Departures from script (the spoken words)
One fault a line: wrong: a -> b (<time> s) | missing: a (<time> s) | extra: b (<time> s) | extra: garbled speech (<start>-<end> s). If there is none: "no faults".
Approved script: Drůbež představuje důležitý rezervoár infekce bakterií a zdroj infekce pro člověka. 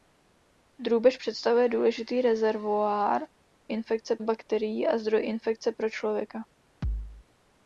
no faults